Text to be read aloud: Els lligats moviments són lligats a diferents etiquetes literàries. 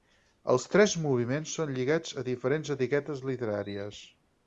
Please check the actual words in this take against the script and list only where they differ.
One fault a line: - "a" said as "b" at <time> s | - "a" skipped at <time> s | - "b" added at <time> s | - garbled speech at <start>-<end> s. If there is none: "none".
- "lligats" said as "tres" at 0.8 s